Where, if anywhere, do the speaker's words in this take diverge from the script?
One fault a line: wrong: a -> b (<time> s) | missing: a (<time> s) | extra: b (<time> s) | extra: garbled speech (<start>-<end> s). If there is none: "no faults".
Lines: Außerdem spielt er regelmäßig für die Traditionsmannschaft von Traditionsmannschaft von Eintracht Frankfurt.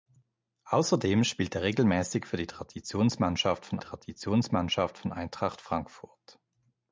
no faults